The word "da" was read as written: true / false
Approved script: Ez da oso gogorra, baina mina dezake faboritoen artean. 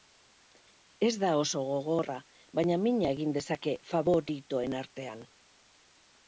true